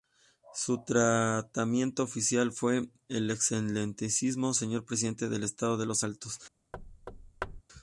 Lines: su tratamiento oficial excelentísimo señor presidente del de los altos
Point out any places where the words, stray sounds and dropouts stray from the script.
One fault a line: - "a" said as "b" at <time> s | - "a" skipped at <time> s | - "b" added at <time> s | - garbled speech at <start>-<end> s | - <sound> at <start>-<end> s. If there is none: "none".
- "fue el" added at 2.5 s
- "estado" added at 5.4 s
- thud at 6.7-7.6 s